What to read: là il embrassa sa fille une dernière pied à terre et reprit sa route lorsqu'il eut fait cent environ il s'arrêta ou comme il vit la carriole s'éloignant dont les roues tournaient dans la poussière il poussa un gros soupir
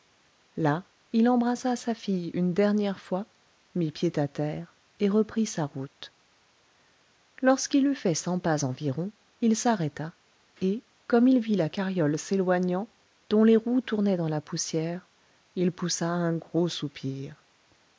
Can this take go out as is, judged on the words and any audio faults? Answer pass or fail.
fail